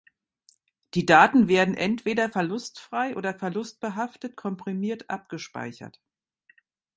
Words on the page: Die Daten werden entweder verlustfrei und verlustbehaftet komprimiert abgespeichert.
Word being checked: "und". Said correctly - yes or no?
no